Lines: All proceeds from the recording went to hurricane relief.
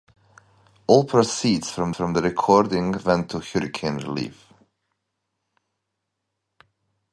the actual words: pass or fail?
fail